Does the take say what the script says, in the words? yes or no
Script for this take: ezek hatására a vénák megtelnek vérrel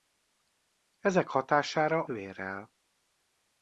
no